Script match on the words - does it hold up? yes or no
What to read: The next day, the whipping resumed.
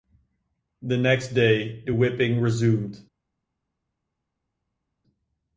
yes